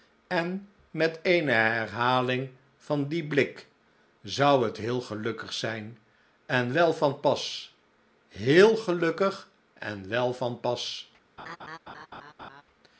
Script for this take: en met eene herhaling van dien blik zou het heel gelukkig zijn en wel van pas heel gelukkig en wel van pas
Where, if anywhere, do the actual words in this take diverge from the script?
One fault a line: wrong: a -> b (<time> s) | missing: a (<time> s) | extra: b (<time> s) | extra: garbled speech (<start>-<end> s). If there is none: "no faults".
no faults